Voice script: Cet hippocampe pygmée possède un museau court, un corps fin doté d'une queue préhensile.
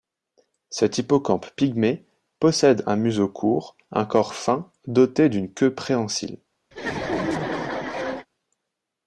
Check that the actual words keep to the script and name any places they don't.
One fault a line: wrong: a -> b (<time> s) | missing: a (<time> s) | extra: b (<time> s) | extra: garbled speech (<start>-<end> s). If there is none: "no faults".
no faults